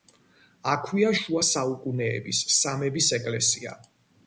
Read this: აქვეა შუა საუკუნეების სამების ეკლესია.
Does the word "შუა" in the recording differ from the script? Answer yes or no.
no